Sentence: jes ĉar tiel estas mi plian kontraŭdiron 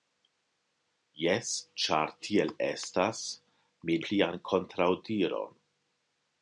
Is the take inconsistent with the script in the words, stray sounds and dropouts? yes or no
no